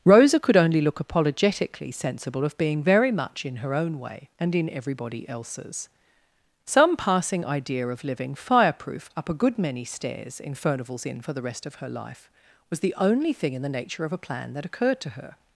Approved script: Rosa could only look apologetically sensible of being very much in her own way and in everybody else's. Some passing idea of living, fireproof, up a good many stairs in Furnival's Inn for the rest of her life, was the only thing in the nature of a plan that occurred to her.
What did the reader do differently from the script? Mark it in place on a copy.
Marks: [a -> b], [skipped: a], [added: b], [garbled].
Rosa could only look apologetically sensible of being very much in her own way and in everybody else's. Some passing idea of living, fireproof, up a good many stairs in Furnival's Inn for the rest of her life, was the only thing in the nature of a plan that occurred to her.